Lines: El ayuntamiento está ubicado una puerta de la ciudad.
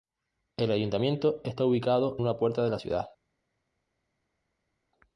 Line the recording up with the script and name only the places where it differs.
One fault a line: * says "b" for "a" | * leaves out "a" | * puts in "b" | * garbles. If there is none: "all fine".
all fine